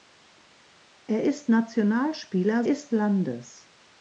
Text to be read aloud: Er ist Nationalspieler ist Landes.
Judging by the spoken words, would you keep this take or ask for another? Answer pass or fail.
pass